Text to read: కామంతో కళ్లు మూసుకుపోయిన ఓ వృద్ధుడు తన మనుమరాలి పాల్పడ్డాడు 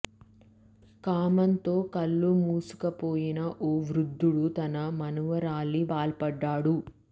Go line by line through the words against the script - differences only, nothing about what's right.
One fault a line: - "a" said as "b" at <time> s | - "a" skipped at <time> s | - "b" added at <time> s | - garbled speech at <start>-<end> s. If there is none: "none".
none